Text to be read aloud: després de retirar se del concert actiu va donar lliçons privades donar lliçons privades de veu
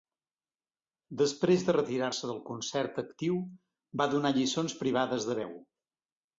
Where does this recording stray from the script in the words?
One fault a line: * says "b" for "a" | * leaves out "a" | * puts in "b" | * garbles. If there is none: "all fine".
* leaves out "donar lliçons privades"